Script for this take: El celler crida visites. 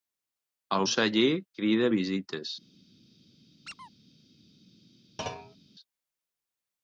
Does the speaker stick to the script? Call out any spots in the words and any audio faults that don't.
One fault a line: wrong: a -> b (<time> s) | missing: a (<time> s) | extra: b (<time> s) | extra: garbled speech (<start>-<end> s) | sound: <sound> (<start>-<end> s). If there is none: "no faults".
sound: squeak (3.6-3.9 s)
sound: thud (5.2-5.6 s)